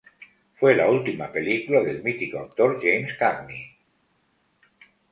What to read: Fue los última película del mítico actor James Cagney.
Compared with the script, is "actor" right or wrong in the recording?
right